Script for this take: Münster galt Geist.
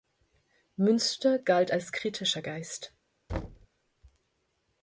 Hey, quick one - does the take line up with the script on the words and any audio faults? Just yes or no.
no